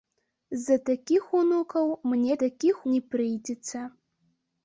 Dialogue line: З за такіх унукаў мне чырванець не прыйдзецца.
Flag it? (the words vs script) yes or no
yes